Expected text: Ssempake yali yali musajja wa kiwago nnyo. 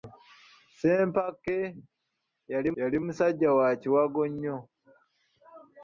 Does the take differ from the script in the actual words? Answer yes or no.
no